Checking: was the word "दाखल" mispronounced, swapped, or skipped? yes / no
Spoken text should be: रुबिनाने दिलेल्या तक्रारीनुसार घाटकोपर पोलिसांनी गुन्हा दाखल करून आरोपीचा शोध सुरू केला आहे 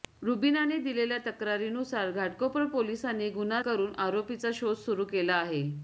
yes